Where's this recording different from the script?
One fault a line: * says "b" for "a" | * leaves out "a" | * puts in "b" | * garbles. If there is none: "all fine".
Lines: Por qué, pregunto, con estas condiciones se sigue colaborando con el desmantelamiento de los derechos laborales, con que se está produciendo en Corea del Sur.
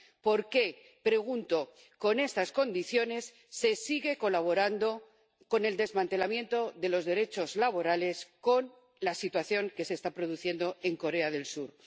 * puts in "la situación"